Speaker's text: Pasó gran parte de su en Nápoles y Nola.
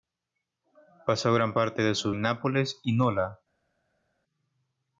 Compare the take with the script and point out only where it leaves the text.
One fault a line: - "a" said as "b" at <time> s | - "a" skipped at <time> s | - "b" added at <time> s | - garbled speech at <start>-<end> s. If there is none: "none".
none